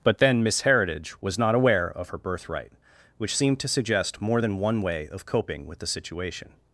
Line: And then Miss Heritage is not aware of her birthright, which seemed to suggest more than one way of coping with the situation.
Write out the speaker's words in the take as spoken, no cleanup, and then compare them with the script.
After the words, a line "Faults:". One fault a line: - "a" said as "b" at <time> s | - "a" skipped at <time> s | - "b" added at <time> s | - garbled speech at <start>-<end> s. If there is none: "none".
But then Miss Heritage was not aware of her birthright, which seemed to suggest more than one way of coping with the situation.
Faults:
- "And" said as "But" at 0.0 s
- "is" said as "was" at 1.2 s